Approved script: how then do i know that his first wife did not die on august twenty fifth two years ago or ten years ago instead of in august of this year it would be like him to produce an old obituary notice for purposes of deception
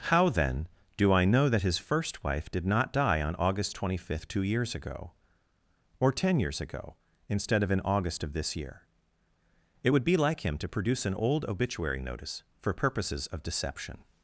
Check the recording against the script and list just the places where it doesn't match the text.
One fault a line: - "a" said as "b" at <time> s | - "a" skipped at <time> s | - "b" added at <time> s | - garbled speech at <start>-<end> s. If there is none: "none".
none